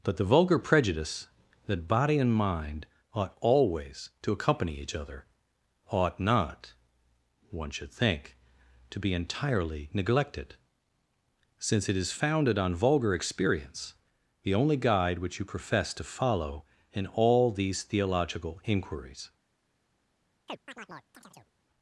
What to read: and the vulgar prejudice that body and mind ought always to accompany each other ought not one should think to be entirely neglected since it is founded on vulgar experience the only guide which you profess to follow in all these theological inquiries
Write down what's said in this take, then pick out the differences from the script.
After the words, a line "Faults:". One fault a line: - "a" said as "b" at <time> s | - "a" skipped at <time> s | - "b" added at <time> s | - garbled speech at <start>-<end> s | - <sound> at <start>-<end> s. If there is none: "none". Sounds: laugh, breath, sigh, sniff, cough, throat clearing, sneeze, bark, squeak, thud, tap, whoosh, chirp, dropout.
but the vulgar prejudice that body and mind ought always to accompany each other ought not one should think to be entirely neglected since it is founded on vulgar experience the only guide which you profess to follow in all these theological inquiries
Faults:
- "and" said as "but" at 0.0 s
- chirp at 20.5-21.5 s